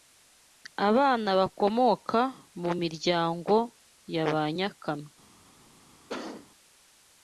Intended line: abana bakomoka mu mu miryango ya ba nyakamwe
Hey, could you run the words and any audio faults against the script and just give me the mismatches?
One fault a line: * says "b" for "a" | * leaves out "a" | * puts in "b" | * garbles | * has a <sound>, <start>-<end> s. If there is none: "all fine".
* leaves out "mu"
* has a cough, 6.1-6.5 s